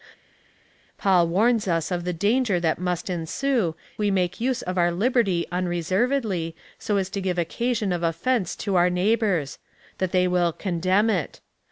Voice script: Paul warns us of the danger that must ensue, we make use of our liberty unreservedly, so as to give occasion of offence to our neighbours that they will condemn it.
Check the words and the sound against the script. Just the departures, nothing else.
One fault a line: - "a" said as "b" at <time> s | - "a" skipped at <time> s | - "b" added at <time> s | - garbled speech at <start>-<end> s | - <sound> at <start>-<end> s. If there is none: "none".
none